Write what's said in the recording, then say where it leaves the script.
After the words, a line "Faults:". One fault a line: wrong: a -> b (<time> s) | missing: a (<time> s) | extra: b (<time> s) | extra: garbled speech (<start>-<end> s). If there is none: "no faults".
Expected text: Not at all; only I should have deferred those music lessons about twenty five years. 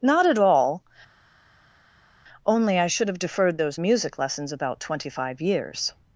Not at all; only I should have deferred those music lessons about twenty five years.
Faults:
no faults